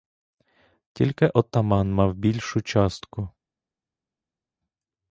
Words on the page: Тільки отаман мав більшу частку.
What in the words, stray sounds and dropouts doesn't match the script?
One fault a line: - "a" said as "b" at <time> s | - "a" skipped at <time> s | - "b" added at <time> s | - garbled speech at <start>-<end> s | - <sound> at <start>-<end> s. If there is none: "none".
none